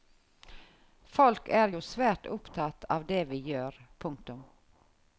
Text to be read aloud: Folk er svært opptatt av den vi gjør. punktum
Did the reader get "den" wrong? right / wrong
wrong